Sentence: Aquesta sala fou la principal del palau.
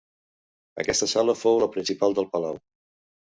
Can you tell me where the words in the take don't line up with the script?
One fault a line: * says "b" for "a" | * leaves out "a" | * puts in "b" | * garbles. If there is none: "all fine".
all fine